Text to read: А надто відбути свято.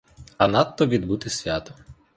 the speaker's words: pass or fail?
pass